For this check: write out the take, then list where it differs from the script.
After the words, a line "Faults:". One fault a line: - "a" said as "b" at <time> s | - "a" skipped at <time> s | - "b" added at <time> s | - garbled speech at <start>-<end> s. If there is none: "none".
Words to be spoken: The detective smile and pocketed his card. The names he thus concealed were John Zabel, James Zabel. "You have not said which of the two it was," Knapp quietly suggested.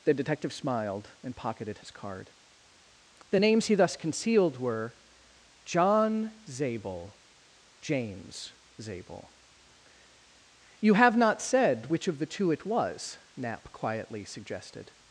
The detective smiled and pocketed his card. The names he thus concealed were John Zabel, James Zabel. "You have not said which of the two it was," Knapp quietly suggested.
Faults:
- "smile" said as "smiled" at 0.5 s